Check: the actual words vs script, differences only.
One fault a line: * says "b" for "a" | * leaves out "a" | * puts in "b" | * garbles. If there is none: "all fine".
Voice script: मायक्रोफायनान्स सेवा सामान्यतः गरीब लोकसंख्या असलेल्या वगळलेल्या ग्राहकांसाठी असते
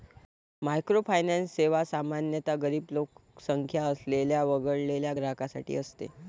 all fine